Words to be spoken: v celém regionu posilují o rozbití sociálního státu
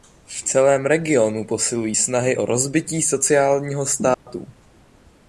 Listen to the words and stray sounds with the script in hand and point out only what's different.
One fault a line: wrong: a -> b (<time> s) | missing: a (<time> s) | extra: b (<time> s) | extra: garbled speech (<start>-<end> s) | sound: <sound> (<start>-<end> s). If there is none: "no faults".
extra: snahy (1.9 s)
sound: dropout (4.1-4.3 s)